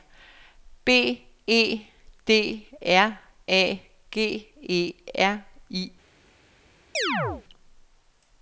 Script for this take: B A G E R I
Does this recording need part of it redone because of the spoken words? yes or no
yes